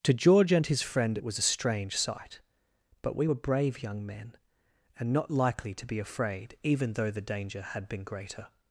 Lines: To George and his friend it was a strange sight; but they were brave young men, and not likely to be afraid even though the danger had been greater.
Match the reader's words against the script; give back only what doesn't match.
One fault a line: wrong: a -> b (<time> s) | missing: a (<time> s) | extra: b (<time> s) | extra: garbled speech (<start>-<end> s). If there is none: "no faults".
wrong: they -> we (3.1 s)